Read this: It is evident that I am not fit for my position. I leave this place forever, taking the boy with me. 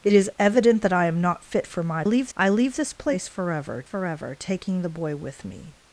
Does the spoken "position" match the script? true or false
false